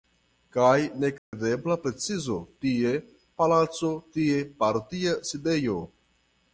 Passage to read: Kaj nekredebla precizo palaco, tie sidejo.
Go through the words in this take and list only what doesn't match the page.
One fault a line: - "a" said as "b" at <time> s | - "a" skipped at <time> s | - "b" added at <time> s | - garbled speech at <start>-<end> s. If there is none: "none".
- "tie" added at 2.6 s
- "partia" added at 4.6 s